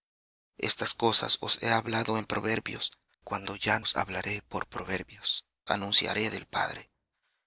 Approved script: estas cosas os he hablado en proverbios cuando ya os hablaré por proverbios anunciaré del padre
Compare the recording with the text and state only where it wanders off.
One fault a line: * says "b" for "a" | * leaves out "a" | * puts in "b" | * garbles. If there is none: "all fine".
all fine